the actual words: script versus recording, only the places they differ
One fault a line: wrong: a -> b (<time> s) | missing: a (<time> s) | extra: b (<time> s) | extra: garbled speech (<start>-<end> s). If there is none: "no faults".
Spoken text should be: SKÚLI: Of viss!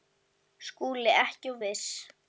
extra: Ekki (1.2 s)